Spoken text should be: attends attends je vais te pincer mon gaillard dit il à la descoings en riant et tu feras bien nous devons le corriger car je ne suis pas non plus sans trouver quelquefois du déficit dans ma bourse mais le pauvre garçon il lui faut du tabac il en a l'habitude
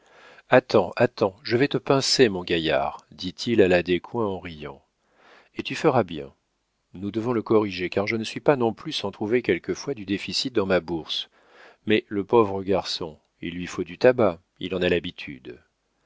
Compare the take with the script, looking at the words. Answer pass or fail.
pass